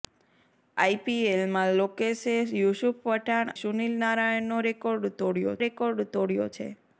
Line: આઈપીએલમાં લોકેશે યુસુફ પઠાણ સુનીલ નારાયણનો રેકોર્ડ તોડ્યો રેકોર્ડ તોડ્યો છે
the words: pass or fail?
pass